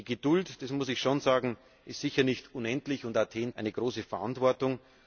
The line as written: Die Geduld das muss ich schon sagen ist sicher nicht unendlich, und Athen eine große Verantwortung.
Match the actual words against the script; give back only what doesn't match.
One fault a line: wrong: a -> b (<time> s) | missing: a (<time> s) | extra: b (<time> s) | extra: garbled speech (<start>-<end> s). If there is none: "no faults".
no faults